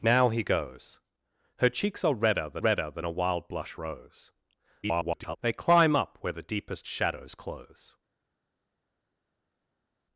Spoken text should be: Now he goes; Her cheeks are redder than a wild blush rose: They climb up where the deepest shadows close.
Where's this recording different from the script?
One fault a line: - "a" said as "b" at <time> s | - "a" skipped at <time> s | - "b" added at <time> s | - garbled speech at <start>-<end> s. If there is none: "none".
- "redder than" added at 2.6 s
- garbled speech at 4.8-5.4 s